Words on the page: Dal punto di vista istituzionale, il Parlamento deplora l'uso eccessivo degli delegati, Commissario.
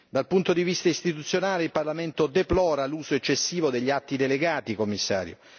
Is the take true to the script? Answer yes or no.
no